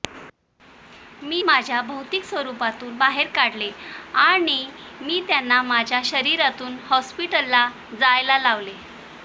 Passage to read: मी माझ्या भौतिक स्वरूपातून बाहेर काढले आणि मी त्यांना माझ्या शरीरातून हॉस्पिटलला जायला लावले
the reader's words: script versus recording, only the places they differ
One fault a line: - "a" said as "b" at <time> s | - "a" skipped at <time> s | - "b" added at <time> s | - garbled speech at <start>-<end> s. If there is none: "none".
none